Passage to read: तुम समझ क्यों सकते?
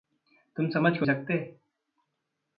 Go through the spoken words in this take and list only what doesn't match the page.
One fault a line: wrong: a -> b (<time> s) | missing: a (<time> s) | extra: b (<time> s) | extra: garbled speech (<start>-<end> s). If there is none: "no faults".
no faults